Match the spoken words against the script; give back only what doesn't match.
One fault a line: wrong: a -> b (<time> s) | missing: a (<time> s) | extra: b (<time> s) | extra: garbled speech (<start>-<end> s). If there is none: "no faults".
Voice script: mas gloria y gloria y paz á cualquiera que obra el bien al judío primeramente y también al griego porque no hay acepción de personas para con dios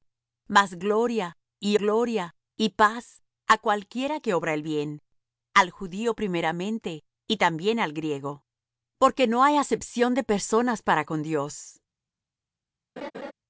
no faults